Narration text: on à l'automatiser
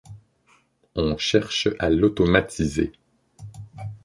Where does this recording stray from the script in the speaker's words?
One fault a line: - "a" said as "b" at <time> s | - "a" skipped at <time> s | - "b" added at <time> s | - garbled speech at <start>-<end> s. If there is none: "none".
- "cherche" added at 1.1 s